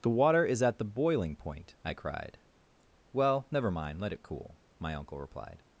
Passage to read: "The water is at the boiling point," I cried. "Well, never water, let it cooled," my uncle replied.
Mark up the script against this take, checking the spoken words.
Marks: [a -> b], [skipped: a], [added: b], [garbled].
"The water is at the boiling point," I cried. "Well, never [water, -> mind] let it [cooled," -> cool] my uncle replied.